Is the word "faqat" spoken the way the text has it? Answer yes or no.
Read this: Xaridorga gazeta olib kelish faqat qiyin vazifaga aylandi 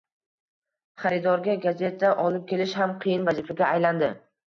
no